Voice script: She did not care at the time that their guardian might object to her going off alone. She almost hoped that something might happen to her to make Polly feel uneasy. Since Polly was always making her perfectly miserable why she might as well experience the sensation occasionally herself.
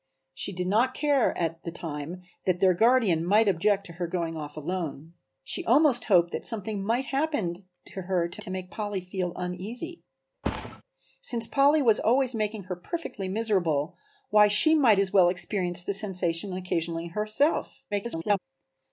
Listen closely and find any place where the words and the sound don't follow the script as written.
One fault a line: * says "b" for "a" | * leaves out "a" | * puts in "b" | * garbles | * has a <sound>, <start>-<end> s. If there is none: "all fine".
* puts in "to"
* has a thud, 10.4-10.8 s
* garbles